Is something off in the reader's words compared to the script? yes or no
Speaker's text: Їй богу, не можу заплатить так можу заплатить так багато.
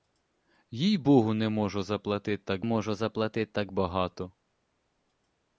no